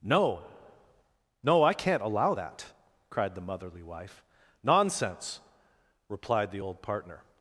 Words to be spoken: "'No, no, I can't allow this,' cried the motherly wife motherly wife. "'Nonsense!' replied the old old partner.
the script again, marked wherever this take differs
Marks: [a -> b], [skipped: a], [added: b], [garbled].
"'No, no, I can't allow [this,' -> that] cried the motherly wife [skipped: motherly wife.] "'Nonsense!' replied the old [skipped: old] partner.